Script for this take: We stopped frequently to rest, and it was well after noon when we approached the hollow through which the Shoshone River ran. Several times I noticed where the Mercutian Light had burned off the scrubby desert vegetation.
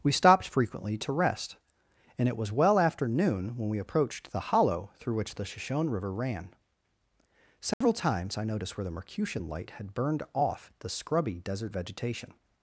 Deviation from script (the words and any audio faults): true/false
true